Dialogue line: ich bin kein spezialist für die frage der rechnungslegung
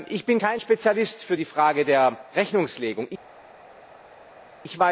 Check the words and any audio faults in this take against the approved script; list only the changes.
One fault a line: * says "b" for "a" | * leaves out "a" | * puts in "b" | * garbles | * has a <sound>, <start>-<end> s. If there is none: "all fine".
all fine